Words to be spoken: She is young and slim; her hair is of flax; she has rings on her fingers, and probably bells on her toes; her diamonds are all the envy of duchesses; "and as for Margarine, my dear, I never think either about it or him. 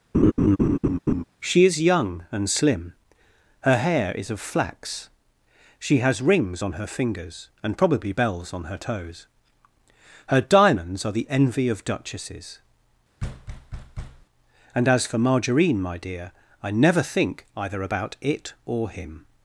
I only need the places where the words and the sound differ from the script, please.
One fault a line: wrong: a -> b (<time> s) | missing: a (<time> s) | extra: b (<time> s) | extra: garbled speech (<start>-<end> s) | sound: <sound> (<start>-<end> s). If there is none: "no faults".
sound: laugh (0.1-1.2 s)
missing: all (11.1 s)
sound: thud (13.2-14.3 s)